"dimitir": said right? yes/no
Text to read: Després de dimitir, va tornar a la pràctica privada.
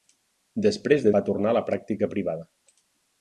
no